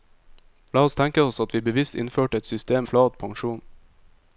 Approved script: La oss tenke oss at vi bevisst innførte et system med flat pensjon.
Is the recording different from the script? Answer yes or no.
yes